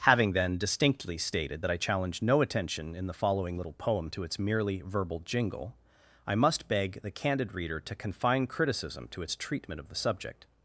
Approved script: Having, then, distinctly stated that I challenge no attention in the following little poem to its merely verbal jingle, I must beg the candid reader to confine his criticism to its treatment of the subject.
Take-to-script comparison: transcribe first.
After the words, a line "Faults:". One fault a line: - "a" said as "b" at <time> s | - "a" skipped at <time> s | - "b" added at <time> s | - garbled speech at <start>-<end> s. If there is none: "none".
Having, then, distinctly stated that I challenge no attention in the following little poem to its merely verbal jingle, I must beg the candid reader to confine criticism to its treatment of the subject.
Faults:
- "his" skipped at 8.5 s